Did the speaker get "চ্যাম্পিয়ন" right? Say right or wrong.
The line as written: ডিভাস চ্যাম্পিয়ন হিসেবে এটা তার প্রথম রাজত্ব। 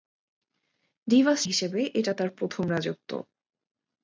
wrong